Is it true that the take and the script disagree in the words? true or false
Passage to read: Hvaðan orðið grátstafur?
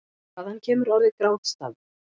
true